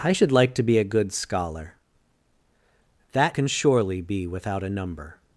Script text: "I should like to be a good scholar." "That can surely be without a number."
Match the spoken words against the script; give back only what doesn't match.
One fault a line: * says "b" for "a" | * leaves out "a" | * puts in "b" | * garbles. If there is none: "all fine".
all fine